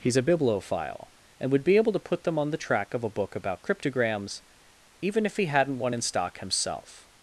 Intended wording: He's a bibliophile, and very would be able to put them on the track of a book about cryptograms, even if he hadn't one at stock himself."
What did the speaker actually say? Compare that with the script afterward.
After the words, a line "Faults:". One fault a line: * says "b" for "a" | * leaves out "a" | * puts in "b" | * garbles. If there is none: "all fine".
He's a bibliophile, and would be able to put them on the track of a book about cryptograms, even if he hadn't one in stock himself."
Faults:
* leaves out "very"
* says "in" for "at"